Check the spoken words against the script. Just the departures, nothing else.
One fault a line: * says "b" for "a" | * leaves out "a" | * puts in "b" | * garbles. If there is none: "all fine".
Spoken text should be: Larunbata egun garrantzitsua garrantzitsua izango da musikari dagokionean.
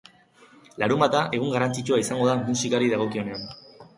* leaves out "garrantzitsua"